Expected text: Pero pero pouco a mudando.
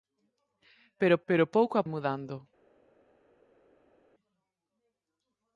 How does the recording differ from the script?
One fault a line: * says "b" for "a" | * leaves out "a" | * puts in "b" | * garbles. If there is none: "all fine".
all fine